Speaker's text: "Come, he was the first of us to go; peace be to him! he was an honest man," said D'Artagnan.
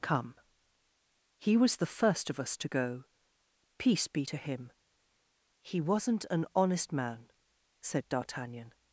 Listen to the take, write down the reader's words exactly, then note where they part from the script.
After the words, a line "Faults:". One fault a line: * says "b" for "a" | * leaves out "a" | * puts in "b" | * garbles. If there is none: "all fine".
"Come, he was the first of us to go; peace be to him! he wasn't an honest man," said D'Artagnan.
Faults:
* says "wasn't" for "was"